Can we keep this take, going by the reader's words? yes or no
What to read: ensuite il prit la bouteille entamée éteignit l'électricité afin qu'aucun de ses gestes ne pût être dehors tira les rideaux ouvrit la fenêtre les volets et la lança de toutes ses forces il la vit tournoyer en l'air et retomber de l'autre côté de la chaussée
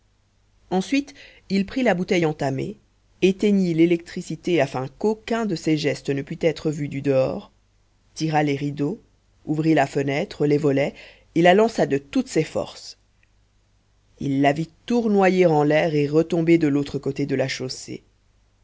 no